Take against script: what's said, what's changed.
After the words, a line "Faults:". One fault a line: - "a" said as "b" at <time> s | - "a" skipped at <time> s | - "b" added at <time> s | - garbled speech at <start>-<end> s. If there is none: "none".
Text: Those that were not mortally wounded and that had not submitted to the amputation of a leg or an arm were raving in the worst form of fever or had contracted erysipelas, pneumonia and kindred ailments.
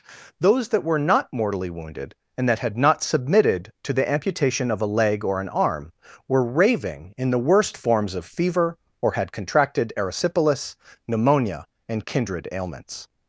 Those that were not mortally wounded and that had not submitted to the amputation of a leg or an arm were raving in the worst forms of fever or had contracted erysipelas, pneumonia and kindred ailments.
Faults:
- "form" said as "forms" at 7.8 s